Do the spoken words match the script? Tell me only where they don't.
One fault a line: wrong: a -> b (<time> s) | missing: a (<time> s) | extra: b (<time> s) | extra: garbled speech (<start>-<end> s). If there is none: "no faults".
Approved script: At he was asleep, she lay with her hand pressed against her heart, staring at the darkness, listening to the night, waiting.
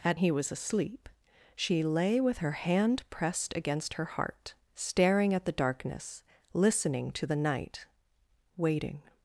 no faults